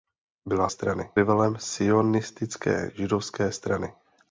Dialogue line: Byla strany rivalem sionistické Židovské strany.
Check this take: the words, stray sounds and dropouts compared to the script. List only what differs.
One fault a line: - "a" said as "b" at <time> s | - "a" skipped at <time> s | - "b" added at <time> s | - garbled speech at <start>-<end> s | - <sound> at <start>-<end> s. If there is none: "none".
none